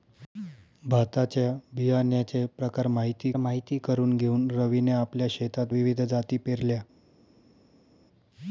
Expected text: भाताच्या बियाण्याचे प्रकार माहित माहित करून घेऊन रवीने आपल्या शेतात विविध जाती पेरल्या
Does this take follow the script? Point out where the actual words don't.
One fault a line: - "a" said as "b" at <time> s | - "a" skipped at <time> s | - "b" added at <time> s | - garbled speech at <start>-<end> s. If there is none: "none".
none